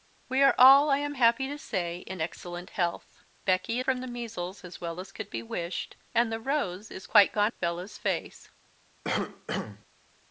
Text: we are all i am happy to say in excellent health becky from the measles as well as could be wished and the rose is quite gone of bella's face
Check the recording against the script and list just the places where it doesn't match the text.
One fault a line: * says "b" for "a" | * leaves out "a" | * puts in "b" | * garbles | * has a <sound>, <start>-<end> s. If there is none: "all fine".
* has a cough, 9.0-9.9 s